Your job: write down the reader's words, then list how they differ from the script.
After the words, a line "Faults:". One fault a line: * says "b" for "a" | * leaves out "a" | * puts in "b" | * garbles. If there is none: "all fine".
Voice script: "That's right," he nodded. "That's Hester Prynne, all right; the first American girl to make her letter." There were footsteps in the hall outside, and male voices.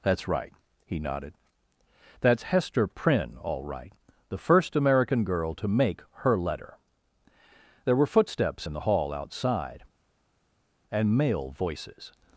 "That's right," he nodded. "That's Hester Prynne, all right; the first American girl to make her letter." There were footsteps in the hall outside, and male voices.
Faults:
all fine